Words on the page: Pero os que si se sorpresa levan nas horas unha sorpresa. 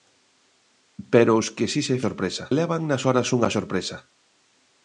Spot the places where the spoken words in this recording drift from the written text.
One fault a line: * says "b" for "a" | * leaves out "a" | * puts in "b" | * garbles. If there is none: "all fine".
all fine